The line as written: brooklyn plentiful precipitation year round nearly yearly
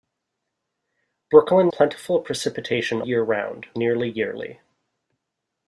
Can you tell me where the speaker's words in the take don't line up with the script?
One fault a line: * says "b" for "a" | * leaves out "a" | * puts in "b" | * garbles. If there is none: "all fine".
all fine